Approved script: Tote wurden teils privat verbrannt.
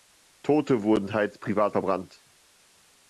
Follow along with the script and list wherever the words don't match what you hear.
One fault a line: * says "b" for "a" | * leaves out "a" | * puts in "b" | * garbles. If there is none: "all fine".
all fine